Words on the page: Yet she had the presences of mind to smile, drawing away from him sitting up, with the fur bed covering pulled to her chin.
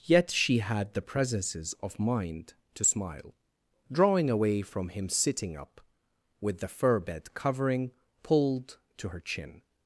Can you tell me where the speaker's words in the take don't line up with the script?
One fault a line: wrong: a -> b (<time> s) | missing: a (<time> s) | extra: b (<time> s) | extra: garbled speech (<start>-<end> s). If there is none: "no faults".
no faults